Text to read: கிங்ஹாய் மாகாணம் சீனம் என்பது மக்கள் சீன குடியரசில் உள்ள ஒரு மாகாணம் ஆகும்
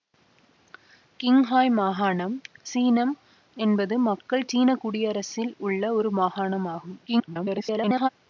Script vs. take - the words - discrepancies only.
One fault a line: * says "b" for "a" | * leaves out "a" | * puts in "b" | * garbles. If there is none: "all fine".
* garbles